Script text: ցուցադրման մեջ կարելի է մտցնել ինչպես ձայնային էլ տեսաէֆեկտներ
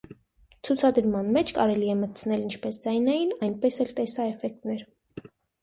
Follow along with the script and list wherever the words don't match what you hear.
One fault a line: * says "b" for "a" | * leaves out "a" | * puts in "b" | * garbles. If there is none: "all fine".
* puts in "այնպես"